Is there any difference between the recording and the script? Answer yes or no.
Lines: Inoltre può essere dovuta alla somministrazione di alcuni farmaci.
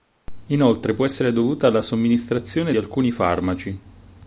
yes